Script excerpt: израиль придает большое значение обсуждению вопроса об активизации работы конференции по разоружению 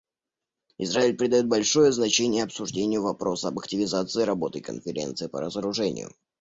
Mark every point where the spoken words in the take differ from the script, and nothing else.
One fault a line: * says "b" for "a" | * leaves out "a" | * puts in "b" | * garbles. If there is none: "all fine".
all fine